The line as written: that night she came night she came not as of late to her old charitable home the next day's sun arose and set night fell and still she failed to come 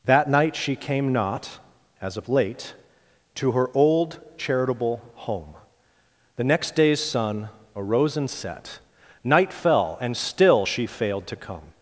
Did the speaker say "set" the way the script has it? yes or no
yes